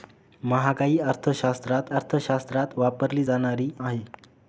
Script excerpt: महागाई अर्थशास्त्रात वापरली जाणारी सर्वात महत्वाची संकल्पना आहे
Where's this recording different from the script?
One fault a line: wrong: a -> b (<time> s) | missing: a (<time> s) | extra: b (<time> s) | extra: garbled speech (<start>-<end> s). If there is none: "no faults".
extra: अर्थशास्त्रात (1.9 s)
missing: सर्वात महत्वाची संकल्पना (3.7 s)